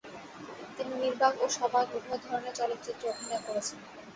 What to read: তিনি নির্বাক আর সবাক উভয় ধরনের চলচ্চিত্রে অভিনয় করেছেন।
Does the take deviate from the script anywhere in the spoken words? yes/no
yes